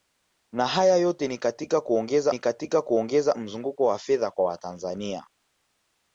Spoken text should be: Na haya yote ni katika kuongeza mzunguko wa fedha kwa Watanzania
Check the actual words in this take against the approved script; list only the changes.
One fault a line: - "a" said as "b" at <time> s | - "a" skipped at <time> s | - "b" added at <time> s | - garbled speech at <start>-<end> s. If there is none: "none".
- "ni katika kuongeza" added at 2.3 s